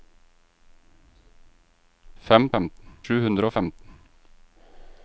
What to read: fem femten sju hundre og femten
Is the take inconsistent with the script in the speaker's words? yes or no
no